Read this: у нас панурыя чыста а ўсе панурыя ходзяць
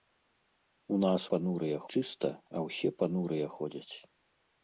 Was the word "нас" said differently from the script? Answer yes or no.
no